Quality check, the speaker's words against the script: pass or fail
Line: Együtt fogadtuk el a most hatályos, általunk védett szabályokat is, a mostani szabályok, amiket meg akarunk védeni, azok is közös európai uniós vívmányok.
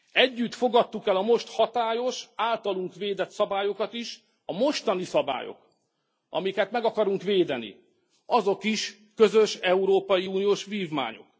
pass